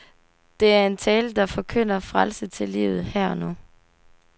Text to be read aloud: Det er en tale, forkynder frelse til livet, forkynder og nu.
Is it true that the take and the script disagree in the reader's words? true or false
true